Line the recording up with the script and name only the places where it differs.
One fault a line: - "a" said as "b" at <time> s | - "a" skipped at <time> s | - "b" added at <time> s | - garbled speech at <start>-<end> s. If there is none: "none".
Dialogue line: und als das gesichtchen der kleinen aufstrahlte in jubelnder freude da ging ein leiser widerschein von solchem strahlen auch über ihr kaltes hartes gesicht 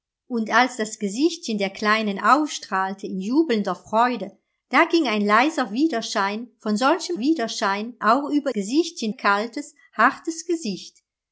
- "strahlen" said as "widerschein" at 7.2 s
- "ihr" said as "gesichtchen" at 8.5 s